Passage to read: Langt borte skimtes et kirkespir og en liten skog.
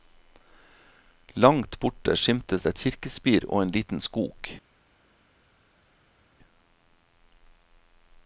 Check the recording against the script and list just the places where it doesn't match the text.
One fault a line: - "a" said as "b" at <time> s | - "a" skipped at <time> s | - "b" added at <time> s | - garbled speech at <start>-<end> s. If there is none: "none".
none